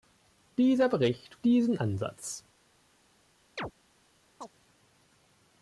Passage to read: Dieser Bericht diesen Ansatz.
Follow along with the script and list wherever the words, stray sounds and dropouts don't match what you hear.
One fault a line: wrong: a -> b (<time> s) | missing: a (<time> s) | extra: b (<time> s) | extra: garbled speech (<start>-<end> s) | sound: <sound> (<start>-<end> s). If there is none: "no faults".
sound: chirp (3.6-3.7 s)
sound: chirp (4.4-4.5 s)